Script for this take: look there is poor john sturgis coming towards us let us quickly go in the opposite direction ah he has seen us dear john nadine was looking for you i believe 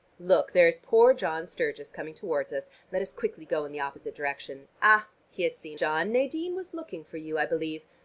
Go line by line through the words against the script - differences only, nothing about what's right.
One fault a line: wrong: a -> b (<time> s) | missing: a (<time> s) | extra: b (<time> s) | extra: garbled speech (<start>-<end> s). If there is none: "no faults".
missing: us dear (5.8 s)